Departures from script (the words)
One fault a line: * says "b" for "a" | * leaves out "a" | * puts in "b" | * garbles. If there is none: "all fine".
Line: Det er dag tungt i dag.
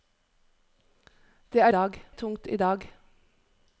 all fine